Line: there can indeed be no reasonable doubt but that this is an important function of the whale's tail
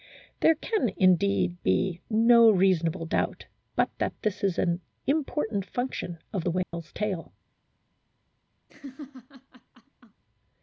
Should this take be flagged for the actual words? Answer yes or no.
no